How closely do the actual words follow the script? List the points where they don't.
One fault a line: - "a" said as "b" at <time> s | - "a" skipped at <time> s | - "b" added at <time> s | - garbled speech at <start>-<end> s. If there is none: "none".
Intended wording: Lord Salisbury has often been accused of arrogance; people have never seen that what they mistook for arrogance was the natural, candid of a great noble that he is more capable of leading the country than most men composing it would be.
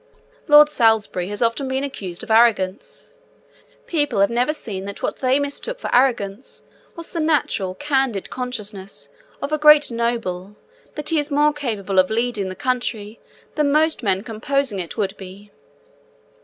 - "consciousness" added at 8.3 s